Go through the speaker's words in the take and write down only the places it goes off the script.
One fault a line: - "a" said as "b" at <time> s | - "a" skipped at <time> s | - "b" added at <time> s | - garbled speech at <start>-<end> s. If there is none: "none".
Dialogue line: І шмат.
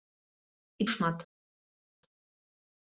none